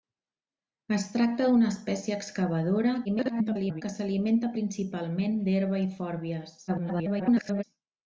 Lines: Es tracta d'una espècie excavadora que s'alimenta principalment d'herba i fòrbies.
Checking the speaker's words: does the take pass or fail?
fail